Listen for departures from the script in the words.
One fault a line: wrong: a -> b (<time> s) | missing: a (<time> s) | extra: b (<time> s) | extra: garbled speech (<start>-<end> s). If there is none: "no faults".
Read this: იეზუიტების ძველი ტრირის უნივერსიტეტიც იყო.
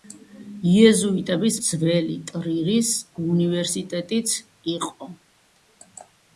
no faults